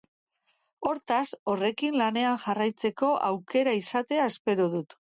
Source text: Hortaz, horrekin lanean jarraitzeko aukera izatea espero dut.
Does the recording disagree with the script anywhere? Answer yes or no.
no